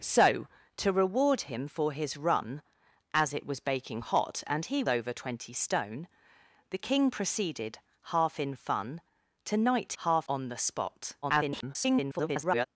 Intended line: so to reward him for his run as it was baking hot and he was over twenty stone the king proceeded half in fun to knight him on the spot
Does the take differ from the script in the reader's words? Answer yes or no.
yes